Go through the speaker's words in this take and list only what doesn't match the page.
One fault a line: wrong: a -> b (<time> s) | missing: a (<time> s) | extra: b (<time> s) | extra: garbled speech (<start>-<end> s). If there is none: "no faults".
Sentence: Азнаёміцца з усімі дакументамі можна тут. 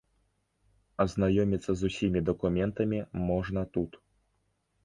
no faults